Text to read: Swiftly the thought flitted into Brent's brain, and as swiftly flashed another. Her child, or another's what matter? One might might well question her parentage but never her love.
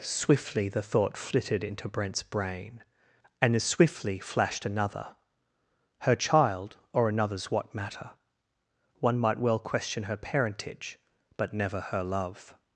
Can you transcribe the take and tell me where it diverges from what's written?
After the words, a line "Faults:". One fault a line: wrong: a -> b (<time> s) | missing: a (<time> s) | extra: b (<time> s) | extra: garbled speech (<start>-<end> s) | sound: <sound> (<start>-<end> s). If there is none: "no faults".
Swiftly the thought flitted into Brent's brain, and as swiftly flashed another. Her child, or another's what matter? One might well question her parentage but never her love.
Faults:
missing: might (9.4 s)